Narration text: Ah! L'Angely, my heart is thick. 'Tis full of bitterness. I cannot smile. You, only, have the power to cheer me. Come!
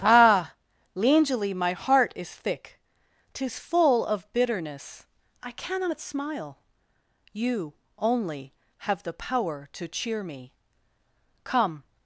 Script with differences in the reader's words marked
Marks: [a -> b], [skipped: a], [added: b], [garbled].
Ah! L'Angely, my heart is thick. 'Tis full of bitterness. I cannot smile. You, only, have the power to cheer me. Come!